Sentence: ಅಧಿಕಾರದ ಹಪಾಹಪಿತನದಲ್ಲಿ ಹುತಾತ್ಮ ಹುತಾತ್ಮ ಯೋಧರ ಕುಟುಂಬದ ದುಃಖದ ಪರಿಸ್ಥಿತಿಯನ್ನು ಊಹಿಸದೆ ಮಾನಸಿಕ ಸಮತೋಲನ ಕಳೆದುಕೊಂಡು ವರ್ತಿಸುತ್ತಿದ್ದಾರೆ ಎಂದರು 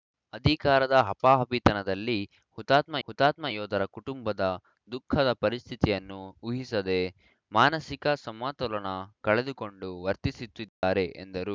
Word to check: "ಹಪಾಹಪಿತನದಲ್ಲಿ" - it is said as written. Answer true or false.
true